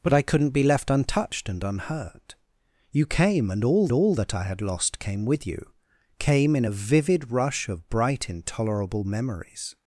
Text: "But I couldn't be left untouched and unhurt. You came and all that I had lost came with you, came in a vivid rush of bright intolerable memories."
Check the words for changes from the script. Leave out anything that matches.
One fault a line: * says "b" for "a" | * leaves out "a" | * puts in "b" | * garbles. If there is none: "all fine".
* puts in "all"